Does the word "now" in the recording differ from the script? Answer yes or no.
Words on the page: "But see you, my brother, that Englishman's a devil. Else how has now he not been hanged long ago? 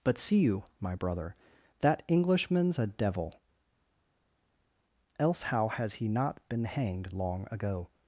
yes